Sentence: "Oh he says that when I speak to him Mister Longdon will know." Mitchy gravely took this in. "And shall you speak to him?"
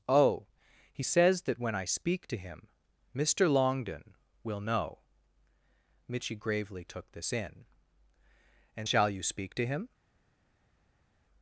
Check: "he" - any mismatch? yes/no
no